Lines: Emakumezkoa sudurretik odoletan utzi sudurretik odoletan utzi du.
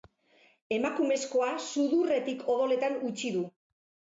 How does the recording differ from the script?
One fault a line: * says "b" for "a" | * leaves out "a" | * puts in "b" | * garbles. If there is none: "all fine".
* leaves out "sudurretik odoletan utzi"